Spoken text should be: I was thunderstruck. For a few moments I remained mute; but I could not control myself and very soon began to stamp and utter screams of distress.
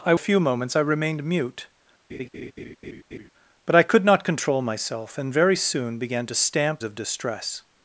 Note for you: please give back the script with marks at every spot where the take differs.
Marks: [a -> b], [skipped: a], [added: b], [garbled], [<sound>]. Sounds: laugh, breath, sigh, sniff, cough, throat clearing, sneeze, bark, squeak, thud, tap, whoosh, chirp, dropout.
I [skipped: was thunderstruck. For] a few moments I remained mute; [laugh] but I could not control myself and very soon began to stamp [skipped: and utter screams] of distress.